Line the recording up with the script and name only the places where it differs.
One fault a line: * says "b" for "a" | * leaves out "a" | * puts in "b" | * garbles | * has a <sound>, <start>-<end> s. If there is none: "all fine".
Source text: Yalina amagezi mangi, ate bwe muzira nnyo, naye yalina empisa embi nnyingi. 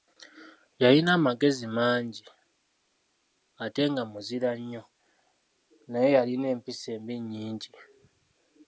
* says "nga" for "bwe"